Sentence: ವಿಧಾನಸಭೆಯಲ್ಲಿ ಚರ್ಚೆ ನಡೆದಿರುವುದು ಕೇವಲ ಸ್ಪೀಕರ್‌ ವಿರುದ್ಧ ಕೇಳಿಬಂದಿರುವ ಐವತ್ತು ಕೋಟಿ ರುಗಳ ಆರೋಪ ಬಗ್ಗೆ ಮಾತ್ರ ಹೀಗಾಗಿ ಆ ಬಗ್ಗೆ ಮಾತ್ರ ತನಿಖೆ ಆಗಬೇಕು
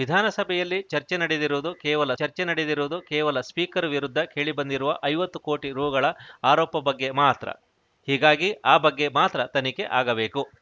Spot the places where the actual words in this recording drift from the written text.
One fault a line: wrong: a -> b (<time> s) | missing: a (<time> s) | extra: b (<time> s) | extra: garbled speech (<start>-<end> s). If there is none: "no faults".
extra: ಚರ್ಚೆ ನಡೆದಿರುವುದು ಕೇವಲ (2.2 s)